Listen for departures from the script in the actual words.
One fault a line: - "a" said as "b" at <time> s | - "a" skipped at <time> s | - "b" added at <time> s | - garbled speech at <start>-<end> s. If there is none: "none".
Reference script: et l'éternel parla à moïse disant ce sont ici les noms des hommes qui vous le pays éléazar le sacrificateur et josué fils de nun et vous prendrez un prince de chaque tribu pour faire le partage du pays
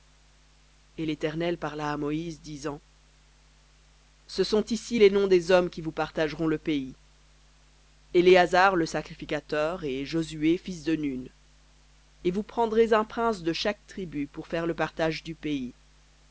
- "partageront" added at 5.9 s